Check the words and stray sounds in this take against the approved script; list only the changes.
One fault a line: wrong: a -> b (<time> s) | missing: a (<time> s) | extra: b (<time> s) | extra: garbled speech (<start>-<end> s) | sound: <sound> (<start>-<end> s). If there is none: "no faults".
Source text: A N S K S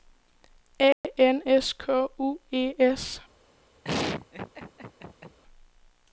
sound: dropout (0.9-1.0 s)
extra: U E (2.2 s)
sound: laugh (3.8-5.4 s)